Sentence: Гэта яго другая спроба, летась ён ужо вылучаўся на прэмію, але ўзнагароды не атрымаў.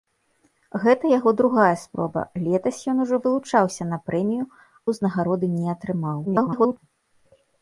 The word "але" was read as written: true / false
false